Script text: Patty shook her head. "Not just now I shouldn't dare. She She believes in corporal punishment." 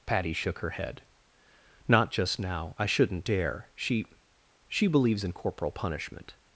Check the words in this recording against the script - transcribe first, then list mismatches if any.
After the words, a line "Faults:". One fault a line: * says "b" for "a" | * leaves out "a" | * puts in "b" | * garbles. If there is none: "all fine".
Patty shook her head. "Not just now I shouldn't dare. She She believes in corporal punishment."
Faults:
all fine